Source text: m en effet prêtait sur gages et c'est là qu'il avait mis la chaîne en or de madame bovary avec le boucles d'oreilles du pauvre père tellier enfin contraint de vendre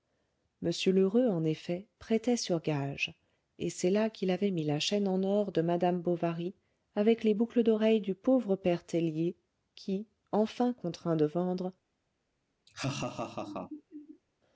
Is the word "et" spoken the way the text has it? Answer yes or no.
yes